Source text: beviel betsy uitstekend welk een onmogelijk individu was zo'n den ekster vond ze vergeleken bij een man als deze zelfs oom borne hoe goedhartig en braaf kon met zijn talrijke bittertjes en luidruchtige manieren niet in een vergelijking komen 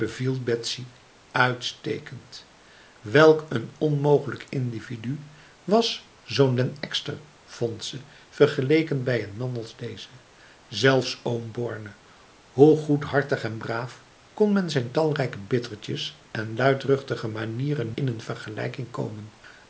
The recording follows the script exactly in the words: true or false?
false